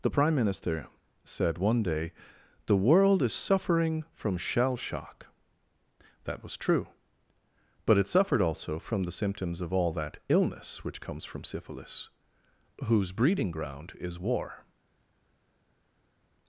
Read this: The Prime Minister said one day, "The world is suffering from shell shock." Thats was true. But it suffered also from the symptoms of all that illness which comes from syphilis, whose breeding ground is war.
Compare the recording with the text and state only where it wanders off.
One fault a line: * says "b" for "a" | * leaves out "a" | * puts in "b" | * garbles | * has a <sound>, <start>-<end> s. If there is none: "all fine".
* says "That" for "Thats"